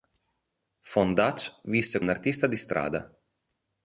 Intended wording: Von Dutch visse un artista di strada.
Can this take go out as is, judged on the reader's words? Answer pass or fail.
pass